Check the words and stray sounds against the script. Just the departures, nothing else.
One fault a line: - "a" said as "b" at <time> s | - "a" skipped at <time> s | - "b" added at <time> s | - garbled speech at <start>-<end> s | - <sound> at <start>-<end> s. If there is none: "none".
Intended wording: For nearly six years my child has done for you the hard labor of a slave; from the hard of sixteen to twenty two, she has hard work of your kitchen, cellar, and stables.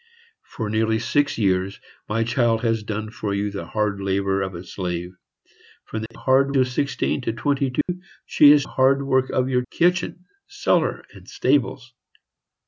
- dropout at 6.1-6.1 s
- dropout at 7.8-7.9 s